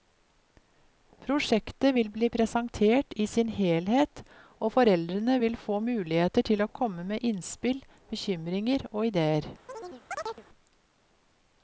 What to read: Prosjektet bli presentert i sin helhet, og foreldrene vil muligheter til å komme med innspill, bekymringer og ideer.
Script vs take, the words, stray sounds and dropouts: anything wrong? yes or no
yes